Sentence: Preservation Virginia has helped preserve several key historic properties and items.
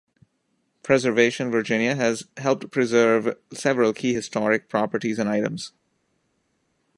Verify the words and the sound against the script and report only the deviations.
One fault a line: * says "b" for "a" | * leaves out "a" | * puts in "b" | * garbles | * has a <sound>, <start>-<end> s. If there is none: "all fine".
all fine